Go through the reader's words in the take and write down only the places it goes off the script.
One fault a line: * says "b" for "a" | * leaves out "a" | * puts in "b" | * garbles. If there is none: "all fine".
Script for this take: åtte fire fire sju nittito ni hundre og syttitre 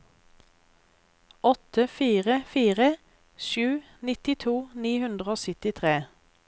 all fine